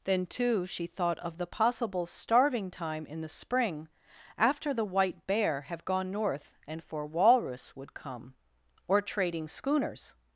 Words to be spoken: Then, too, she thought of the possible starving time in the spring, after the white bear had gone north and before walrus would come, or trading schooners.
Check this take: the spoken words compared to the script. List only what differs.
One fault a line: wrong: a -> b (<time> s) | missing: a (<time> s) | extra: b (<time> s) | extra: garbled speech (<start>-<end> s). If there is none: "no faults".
wrong: had -> have (5.6 s)
wrong: before -> for (6.8 s)